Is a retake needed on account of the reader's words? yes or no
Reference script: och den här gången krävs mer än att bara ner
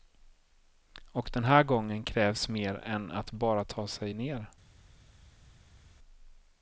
yes